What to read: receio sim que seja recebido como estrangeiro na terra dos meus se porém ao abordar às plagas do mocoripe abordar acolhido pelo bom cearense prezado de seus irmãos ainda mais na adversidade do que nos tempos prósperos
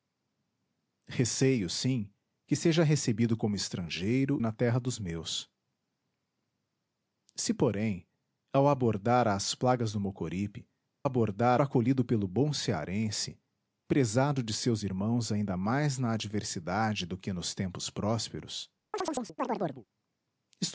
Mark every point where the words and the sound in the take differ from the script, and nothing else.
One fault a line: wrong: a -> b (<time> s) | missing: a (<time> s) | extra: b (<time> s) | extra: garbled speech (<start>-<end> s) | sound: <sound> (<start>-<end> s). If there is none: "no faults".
sound: chirp (18.9-19.9 s)